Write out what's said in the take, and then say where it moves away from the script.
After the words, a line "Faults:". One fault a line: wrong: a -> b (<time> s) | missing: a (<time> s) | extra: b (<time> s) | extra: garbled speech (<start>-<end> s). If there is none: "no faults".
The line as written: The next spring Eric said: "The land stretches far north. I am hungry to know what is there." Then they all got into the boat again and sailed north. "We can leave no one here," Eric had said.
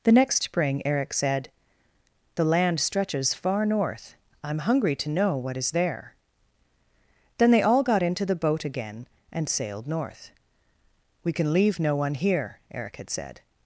The next spring Eric said: "The land stretches far north. I am hungry to know what is there." Then they all got into the boat again and sailed north. "We can leave no one here," Eric had said.
Faults:
no faults